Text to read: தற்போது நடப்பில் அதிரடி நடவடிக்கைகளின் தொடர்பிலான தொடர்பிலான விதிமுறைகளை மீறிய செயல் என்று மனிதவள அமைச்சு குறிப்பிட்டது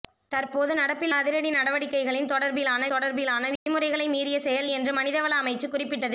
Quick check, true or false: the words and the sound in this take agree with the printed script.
false